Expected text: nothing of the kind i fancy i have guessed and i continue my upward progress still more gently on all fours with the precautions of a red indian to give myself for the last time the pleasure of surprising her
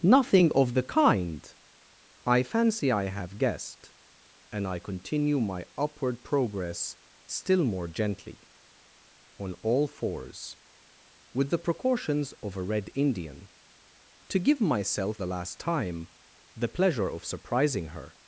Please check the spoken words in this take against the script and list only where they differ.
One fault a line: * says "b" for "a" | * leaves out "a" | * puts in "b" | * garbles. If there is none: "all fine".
* leaves out "for"